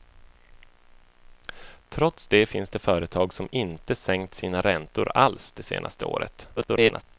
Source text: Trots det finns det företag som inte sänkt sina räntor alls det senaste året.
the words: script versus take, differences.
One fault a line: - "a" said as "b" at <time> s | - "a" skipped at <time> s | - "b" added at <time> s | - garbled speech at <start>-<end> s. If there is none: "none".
- garbled speech at 6.6-7.0 s